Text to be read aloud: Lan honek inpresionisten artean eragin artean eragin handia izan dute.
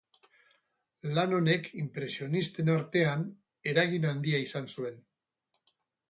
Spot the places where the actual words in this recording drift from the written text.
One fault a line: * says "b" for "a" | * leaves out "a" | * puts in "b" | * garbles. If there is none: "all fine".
* leaves out "artean eragin"
* says "zuen" for "dute"